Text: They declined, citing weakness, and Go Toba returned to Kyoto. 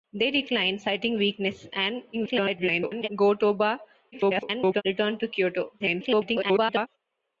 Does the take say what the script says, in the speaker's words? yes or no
no